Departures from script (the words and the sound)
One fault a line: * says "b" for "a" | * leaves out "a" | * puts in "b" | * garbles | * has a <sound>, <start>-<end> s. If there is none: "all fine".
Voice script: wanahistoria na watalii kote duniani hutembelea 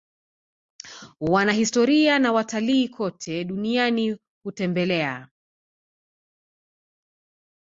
all fine